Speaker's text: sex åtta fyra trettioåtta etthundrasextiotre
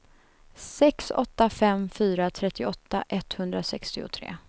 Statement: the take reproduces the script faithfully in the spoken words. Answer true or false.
false